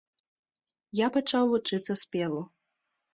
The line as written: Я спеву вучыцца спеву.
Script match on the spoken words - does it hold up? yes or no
no